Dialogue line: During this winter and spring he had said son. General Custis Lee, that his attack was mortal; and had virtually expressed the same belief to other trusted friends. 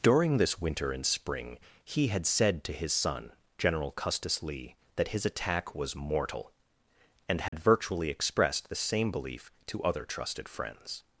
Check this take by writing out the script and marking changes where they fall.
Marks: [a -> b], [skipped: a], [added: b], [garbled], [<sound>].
During this winter and spring he had said [added: to his] son. General Custis Lee, that his attack was mortal; and had [dropout] virtually expressed the same belief to other trusted friends.